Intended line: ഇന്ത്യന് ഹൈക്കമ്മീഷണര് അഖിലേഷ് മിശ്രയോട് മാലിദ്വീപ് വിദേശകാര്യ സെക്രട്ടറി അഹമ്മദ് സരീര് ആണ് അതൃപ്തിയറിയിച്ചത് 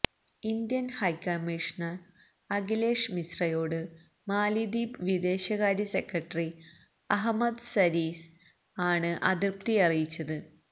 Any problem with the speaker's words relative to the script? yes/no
no